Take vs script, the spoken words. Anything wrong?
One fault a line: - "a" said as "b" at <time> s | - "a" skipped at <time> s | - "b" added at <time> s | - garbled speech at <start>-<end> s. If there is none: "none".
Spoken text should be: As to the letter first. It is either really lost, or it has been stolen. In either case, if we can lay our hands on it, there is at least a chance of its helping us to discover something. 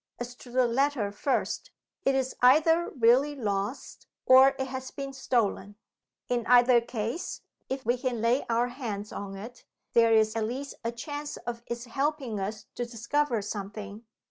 none